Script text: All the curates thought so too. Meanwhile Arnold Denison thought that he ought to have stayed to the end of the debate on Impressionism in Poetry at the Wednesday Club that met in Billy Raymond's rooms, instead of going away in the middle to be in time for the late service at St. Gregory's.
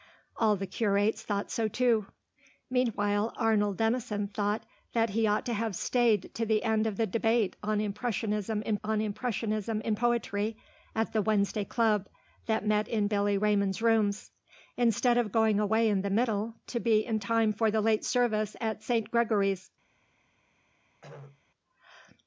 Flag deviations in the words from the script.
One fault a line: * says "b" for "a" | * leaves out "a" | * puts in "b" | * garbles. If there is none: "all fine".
* puts in "on Impressionism in"